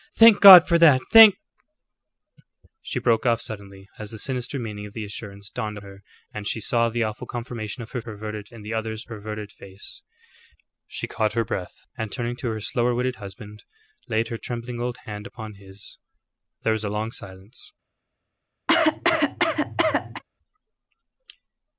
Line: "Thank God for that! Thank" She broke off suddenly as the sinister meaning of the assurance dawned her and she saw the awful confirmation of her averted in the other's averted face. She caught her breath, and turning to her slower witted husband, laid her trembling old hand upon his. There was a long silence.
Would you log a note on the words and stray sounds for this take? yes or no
yes